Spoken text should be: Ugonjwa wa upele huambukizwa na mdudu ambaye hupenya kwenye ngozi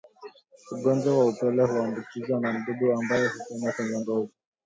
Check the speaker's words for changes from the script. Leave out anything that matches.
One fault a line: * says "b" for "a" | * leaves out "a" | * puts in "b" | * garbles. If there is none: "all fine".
all fine